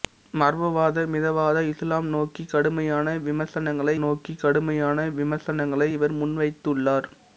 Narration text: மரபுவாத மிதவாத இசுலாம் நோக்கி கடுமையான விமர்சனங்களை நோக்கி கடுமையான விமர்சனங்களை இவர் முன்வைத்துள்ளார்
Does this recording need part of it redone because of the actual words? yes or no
no